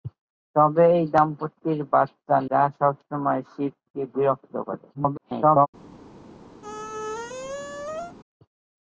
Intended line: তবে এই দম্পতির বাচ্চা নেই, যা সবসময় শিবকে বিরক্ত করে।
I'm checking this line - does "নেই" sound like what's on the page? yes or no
no